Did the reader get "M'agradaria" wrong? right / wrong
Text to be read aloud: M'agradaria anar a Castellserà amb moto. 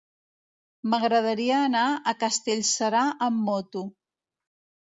right